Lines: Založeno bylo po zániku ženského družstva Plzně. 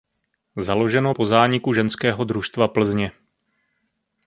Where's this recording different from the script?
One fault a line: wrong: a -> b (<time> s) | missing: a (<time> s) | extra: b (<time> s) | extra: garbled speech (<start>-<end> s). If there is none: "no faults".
missing: bylo (1.1 s)